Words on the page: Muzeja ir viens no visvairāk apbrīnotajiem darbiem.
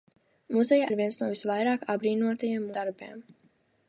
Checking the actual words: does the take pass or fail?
pass